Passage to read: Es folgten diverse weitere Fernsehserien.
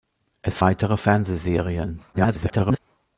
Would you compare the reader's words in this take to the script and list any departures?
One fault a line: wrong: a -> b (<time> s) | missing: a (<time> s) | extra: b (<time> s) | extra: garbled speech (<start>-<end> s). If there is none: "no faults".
missing: folgten diverse (0.6 s)
extra: garbled speech (2.1-2.8 s)